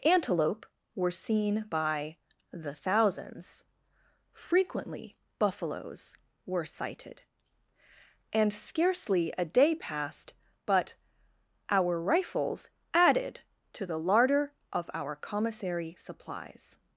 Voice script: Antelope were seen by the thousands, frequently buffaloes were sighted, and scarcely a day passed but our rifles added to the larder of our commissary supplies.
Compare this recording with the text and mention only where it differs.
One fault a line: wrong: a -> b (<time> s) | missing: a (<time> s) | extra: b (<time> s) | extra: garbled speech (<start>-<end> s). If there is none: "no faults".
no faults